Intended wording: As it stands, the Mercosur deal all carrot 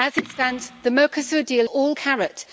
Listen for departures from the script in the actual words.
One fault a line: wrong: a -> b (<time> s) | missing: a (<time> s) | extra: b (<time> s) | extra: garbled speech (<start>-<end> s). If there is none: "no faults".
no faults